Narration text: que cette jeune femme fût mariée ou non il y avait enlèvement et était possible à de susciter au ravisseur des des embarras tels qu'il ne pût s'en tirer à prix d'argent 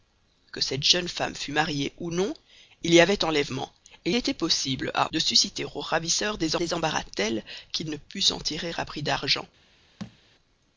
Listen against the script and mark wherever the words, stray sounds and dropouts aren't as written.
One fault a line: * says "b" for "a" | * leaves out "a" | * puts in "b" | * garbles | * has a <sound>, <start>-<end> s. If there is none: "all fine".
* has a thud, 10.0-10.2 s